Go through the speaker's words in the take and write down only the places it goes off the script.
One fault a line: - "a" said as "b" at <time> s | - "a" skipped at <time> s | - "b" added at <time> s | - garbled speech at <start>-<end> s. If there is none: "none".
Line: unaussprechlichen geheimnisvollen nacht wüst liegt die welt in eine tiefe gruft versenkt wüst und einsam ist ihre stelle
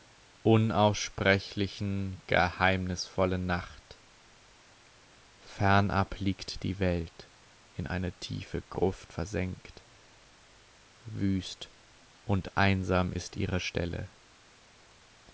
- "wüst" said as "fernab" at 5.4 s